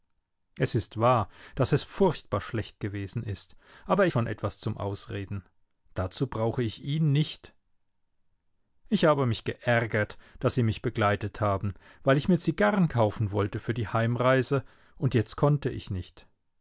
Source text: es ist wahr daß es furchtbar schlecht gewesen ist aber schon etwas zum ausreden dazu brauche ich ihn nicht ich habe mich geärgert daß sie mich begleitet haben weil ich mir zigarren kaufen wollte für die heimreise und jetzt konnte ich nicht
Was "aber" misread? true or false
false